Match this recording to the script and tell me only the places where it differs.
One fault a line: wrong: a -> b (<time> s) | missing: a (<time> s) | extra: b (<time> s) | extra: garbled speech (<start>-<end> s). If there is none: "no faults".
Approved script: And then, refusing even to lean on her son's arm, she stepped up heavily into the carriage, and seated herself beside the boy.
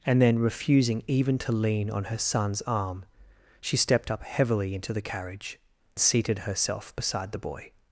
missing: and (5.6 s)